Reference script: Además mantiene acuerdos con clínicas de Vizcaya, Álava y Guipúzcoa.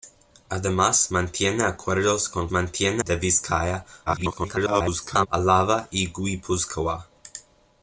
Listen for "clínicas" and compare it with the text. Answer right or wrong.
wrong